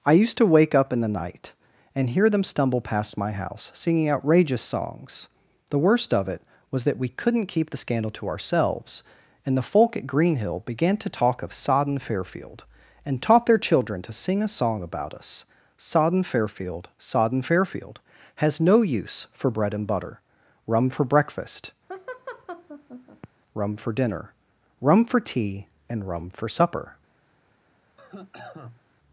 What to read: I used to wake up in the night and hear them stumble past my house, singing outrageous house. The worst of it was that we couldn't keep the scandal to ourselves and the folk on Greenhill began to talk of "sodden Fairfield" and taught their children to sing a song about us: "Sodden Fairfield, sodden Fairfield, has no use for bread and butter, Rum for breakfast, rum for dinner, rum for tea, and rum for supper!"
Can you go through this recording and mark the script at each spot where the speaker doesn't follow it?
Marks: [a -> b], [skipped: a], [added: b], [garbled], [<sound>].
I used to wake up in the night and hear them stumble past my house, singing outrageous [house. -> songs] The worst of it was that we couldn't keep the scandal to ourselves and the folk [on -> at] Greenhill began to talk of "sodden Fairfield" and taught their children to sing a song about us: "Sodden Fairfield, sodden Fairfield, has no use for bread and butter, Rum for breakfast, [laugh] rum for dinner, rum for tea, and rum for supper!" [cough]